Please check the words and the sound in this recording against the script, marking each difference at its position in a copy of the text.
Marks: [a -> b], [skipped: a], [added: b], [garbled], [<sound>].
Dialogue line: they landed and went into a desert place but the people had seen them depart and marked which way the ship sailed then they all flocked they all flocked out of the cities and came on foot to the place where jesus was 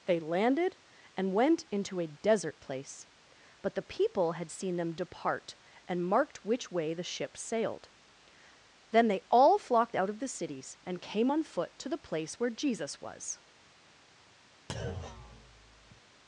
they landed and went into a desert place but the people had seen them depart and marked which way the ship sailed then they all flocked [skipped: they all flocked] out of the cities and came on foot to the place where jesus was [thud]